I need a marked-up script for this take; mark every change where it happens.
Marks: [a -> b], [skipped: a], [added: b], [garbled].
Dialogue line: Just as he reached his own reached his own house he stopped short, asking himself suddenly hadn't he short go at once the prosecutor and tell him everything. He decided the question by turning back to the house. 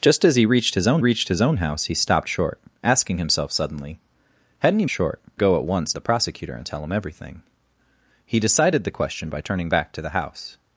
Just as he reached his own reached his own house he stopped short, asking himself suddenly hadn't he short go at once the prosecutor and tell him everything. He decided the question by turning back to the house.